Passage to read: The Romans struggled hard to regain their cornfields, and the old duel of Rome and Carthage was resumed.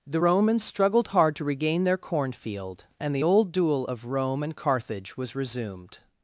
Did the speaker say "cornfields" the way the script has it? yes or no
no